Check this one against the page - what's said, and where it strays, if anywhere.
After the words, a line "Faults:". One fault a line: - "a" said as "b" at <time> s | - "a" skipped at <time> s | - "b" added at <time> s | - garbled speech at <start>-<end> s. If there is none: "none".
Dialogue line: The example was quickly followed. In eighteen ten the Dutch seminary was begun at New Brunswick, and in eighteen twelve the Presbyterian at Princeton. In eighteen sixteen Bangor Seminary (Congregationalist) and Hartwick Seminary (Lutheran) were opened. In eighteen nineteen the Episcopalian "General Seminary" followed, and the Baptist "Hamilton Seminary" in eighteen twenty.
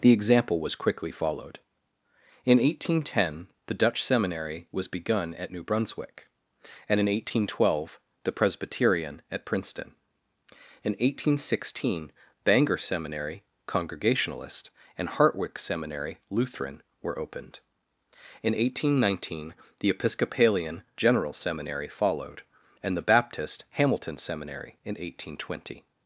The example was quickly followed. In eighteen ten the Dutch seminary was begun at New Brunswick, and in eighteen twelve the Presbyterian at Princeton. In eighteen sixteen Bangor Seminary (Congregationalist) and Hartwick Seminary (Lutheran) were opened. In eighteen nineteen the Episcopalian "General Seminary" followed, and the Baptist "Hamilton Seminary" in eighteen twenty.
Faults:
none